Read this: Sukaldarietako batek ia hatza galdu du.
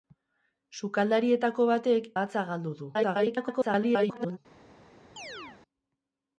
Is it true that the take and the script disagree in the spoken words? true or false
true